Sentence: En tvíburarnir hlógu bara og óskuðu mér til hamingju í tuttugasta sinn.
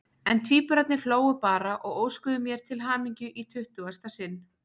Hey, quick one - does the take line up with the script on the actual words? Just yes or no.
yes